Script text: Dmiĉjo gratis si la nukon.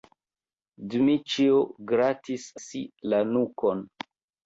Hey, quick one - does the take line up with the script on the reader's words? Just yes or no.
yes